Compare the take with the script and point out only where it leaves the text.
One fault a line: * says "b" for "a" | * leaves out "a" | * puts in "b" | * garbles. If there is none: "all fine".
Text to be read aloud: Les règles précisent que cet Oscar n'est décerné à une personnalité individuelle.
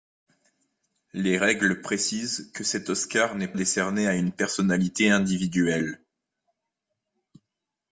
all fine